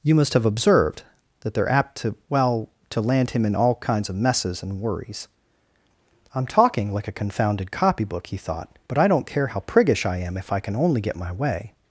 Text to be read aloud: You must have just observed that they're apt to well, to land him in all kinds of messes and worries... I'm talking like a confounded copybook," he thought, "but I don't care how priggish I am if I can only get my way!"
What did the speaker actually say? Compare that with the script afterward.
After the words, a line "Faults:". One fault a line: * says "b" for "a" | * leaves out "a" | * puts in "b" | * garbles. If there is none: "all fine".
You must have observed that they're apt to well, to land him in all kinds of messes and worries... I'm talking like a confounded copybook," he thought, "but I don't care how priggish I am if I can only get my way!"
Faults:
* leaves out "just"